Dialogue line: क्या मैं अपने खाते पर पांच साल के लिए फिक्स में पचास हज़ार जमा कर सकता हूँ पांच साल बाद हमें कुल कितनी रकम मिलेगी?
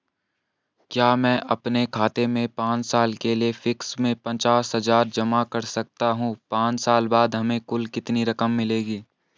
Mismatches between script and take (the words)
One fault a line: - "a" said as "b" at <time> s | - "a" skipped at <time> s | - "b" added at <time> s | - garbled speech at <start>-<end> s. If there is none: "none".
- "पर" said as "में" at 2.3 s